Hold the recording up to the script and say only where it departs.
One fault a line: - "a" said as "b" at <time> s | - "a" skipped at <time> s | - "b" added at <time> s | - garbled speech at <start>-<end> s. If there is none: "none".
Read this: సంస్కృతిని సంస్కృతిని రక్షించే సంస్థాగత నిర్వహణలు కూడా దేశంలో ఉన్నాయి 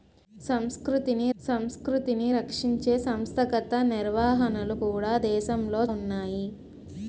none